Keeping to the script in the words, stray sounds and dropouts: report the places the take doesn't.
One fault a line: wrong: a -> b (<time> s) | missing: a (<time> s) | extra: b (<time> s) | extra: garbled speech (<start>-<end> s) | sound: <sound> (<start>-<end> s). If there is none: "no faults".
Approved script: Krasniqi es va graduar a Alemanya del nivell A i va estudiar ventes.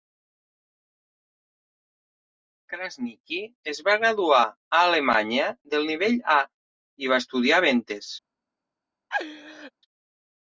sound: laugh (9.1-9.7 s)